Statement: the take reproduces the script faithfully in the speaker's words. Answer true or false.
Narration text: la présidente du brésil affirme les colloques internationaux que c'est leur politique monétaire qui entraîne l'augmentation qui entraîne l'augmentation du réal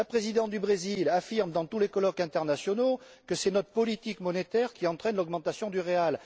false